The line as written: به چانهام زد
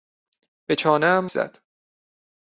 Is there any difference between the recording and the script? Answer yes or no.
no